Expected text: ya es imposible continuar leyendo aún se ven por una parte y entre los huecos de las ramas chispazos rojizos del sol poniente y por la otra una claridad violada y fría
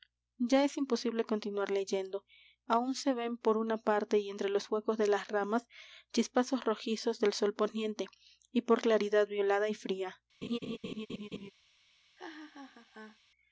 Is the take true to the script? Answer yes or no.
no